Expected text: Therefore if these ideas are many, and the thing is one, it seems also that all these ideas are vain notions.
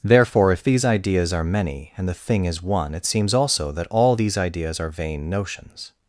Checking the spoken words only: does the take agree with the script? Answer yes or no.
yes